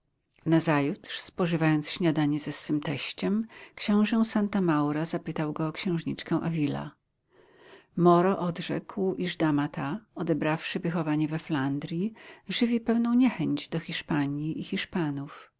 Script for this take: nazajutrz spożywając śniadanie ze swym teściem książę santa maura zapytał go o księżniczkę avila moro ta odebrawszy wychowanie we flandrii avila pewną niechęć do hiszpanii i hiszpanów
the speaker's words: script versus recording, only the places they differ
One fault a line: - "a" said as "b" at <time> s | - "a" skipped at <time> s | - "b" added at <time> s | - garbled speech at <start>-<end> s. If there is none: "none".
- "odrzekł iż dama" added at 8.4 s
- "avila" said as "żywi" at 12.5 s